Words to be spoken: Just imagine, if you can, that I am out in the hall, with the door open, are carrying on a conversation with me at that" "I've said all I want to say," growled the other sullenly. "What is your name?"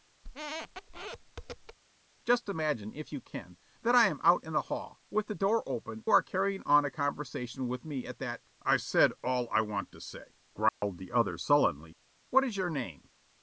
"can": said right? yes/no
yes